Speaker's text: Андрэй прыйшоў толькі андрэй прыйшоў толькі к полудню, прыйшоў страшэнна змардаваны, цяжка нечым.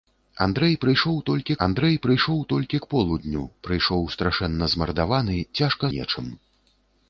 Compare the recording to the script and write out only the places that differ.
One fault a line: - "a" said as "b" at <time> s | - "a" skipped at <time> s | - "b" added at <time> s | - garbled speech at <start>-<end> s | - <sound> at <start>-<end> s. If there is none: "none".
none